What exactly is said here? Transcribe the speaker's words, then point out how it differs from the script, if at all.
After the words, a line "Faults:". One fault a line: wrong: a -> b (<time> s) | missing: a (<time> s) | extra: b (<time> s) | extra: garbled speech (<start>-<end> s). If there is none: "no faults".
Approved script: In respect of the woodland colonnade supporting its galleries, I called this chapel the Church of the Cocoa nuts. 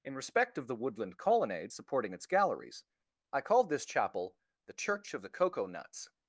In respect of the woodland colonnade supporting its galleries, I called this chapel the Church of the Cocoa nuts.
Faults:
no faults